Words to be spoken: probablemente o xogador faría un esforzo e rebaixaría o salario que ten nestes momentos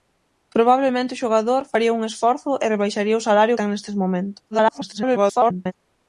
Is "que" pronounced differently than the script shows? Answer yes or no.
yes